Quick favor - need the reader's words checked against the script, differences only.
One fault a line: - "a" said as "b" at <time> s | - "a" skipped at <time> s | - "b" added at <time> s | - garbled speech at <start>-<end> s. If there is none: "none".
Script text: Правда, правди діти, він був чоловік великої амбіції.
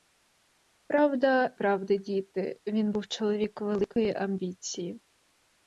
none